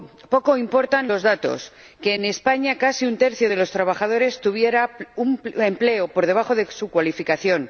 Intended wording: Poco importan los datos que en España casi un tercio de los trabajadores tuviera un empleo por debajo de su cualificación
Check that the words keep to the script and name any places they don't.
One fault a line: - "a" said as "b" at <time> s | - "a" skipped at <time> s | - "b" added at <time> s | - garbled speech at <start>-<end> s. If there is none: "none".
none